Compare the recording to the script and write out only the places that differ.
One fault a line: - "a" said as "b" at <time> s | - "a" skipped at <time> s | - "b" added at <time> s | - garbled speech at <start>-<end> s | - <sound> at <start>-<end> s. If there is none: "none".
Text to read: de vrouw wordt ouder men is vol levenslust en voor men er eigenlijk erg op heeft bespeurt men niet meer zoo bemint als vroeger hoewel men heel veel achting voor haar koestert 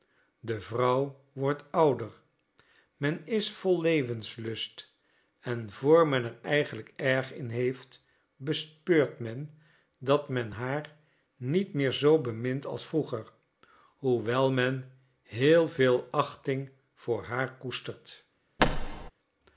- "op" said as "in" at 7.3 s
- "dat men haar" added at 10.0 s
- thud at 18.6-19.1 s